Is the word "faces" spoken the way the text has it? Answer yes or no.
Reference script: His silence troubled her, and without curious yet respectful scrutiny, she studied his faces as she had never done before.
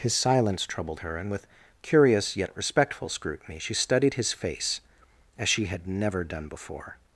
no